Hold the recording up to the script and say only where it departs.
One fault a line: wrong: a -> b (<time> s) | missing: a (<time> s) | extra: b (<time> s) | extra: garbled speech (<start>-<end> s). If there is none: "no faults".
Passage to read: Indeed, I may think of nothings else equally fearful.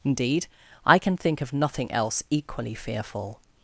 wrong: may -> can (1.0 s)
wrong: nothings -> nothing (1.5 s)